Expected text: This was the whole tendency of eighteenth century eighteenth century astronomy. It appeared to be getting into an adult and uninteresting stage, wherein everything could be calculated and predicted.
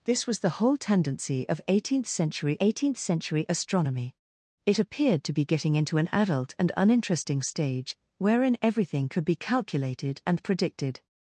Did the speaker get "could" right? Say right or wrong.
right